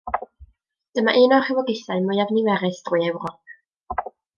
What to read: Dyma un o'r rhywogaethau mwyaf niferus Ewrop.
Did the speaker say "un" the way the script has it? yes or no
yes